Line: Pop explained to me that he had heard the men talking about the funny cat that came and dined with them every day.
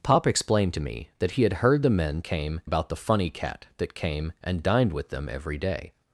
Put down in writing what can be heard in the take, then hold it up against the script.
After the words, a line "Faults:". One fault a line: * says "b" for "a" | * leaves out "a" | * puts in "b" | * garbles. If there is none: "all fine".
Pop explained to me that he had heard the men came about the funny cat that came and dined with them every day.
Faults:
* says "came" for "talking"